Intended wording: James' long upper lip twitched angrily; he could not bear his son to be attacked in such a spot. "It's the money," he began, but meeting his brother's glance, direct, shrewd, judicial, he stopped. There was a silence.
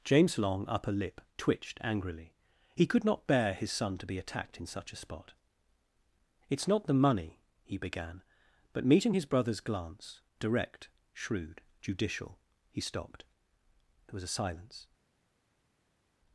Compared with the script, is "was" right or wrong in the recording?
right